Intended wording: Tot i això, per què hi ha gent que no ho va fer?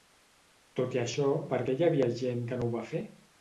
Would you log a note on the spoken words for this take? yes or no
yes